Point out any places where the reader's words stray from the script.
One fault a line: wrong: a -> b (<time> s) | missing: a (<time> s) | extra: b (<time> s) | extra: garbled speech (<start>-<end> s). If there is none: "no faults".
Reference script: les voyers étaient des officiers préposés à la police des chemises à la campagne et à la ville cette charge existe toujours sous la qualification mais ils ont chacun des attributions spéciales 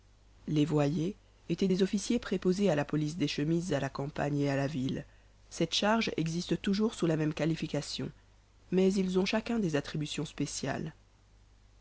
extra: même (7.2 s)